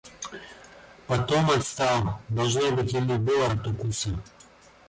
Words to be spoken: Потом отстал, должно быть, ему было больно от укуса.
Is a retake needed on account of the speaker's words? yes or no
yes